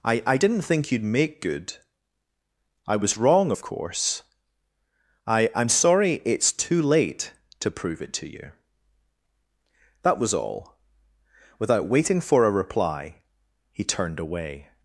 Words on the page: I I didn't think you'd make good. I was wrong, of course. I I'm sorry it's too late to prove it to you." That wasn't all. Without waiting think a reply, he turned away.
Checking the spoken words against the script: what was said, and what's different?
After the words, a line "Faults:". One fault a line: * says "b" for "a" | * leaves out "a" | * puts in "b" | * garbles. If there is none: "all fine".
I I didn't think you'd make good. I was wrong, of course. I I'm sorry it's too late to prove it to you." That was all. Without waiting for a reply, he turned away.
Faults:
* says "was" for "wasn't"
* says "for" for "think"